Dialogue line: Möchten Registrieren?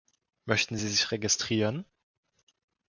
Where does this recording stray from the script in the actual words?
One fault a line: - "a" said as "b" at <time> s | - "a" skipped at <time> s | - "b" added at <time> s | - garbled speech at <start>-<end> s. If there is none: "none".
- "Sie sich" added at 0.8 s